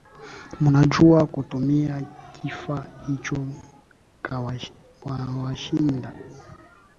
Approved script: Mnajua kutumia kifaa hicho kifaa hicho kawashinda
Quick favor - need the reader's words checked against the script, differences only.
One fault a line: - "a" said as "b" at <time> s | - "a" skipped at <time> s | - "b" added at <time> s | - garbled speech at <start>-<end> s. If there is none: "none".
- "kifaa hicho" skipped at 3.5 s